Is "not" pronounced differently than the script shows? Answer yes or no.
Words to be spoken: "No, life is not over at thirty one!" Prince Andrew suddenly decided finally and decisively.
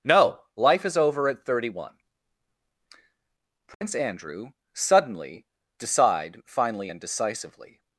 yes